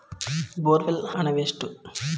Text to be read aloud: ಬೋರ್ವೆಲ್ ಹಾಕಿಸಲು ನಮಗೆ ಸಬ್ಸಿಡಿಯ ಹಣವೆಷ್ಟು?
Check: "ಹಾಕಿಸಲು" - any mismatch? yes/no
yes